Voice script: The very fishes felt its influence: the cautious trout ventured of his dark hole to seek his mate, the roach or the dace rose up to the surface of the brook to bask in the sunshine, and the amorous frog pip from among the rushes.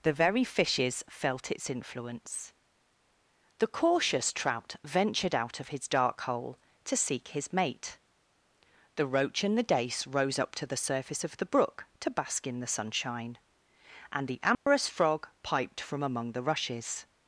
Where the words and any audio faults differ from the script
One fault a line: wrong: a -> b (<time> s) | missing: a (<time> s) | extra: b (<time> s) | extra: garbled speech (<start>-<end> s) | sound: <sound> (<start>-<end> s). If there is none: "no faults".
extra: out (5.3 s)
wrong: or -> and (9.4 s)
sound: dropout (14.5-14.7 s)
wrong: pip -> piped (15.4 s)